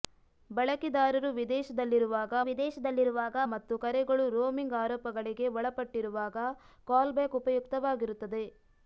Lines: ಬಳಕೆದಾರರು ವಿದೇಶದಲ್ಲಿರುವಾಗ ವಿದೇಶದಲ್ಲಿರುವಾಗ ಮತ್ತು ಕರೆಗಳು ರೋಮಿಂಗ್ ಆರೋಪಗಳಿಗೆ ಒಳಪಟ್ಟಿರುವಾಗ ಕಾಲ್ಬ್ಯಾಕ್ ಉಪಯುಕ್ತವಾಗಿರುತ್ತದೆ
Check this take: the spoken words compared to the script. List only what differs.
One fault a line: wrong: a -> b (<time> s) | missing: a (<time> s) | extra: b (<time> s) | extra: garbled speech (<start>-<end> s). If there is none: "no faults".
no faults